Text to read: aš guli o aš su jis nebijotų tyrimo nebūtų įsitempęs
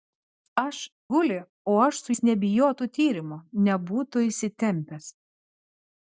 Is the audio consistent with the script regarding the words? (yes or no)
yes